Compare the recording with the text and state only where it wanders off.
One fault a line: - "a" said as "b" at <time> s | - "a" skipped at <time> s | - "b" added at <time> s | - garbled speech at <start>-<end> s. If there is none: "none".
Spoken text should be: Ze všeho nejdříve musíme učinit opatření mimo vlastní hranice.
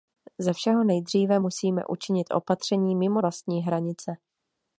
none